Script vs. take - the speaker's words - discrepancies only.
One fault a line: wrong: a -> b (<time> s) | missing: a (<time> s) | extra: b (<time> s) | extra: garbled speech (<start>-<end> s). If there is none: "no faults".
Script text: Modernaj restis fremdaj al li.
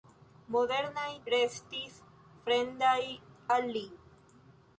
no faults